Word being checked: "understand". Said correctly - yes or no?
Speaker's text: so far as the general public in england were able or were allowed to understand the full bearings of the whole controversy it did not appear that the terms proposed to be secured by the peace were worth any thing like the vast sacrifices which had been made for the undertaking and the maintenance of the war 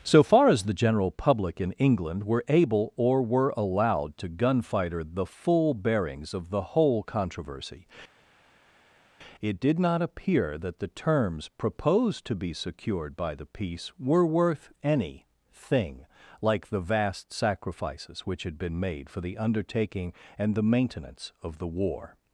no